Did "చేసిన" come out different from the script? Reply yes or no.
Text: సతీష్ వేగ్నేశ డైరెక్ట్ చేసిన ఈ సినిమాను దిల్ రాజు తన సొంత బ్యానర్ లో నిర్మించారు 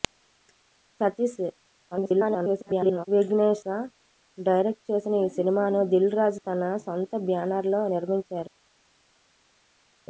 no